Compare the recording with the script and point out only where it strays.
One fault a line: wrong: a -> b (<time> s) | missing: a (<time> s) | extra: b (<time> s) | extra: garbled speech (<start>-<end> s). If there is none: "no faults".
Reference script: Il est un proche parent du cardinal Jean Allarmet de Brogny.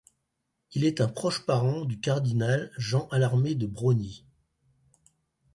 no faults